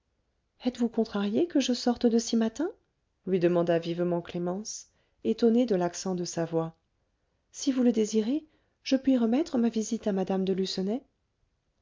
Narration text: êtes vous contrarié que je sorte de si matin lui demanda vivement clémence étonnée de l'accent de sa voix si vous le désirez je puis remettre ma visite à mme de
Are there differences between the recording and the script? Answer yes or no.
no